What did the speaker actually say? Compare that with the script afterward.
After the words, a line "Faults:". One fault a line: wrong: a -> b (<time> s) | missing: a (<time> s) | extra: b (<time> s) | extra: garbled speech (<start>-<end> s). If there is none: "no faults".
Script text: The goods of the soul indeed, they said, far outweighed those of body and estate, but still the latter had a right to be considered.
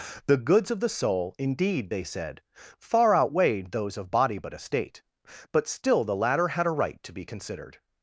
The goods of the soul indeed, they said, far outweighed those of body but estate, but still the latter had a right to be considered.
Faults:
wrong: and -> but (4.4 s)